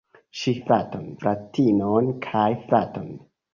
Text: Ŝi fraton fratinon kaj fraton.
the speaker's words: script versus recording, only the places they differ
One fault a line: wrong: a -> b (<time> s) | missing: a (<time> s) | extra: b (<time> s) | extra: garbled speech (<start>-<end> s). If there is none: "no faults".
no faults